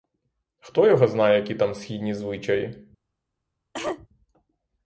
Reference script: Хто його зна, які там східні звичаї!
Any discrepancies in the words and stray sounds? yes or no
yes